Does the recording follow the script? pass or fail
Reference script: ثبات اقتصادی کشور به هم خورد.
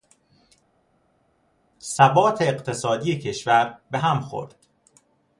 pass